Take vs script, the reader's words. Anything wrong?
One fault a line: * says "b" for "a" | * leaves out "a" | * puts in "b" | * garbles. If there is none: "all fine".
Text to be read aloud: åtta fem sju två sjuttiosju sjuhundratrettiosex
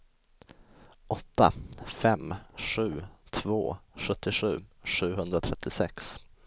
all fine